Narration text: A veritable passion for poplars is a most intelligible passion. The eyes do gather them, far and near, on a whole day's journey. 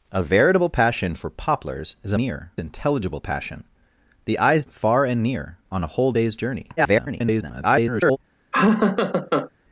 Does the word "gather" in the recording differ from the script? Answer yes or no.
yes